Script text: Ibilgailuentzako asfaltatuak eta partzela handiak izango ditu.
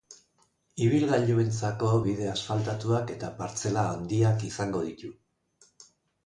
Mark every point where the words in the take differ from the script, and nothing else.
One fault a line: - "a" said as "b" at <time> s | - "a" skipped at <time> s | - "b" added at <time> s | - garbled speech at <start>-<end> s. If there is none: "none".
- "bide" added at 2.1 s